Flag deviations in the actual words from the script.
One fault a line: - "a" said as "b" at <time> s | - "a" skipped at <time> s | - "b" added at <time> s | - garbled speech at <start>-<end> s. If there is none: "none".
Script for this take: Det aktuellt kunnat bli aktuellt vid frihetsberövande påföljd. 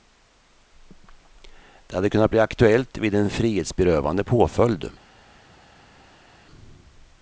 - "aktuellt" said as "hade" at 1.9 s
- "en" added at 3.2 s